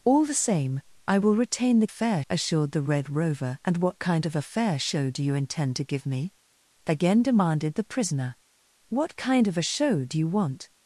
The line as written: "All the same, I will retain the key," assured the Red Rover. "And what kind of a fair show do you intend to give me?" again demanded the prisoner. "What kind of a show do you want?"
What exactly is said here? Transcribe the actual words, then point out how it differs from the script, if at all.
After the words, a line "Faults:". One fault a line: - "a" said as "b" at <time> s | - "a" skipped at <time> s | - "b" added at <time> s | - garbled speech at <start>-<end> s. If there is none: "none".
"All the same, I will retain the fair," assured the Red Rover. "And what kind of a fair show do you intend to give me?" again demanded the prisoner. "What kind of a show do you want?"
Faults:
- "key" said as "fair" at 1.9 s